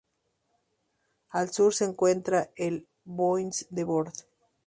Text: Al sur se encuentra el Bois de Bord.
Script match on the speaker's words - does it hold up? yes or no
yes